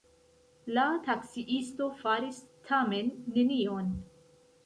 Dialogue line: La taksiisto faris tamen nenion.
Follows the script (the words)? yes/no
yes